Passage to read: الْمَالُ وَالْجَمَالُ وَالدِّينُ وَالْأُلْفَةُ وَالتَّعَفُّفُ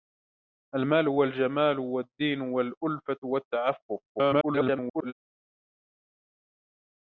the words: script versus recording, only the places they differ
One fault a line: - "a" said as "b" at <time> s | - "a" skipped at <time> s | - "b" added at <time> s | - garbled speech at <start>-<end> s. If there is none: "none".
- garbled speech at 4.1-5.1 s